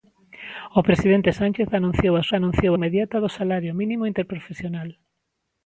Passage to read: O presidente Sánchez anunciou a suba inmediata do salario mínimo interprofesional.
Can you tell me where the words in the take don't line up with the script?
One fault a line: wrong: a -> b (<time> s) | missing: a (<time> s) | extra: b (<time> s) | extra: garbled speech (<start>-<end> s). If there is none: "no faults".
wrong: suba -> anunciou (2.3 s)